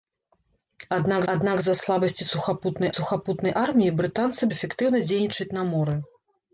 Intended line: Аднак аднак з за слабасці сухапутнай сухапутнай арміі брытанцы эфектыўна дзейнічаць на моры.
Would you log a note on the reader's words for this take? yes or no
no